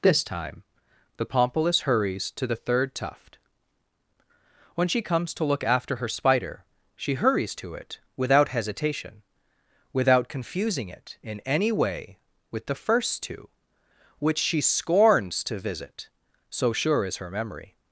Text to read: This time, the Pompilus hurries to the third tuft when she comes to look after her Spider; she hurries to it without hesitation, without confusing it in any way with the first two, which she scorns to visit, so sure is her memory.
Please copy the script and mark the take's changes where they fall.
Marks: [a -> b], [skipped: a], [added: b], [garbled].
This time, the Pompilus hurries to the third tuft when she comes to look after her Spider; she hurries to it without hesitation, without confusing it in any way with the first two, which she scorns to visit, so sure is her memory.